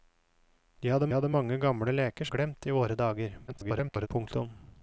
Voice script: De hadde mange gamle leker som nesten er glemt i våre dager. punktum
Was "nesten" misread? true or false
true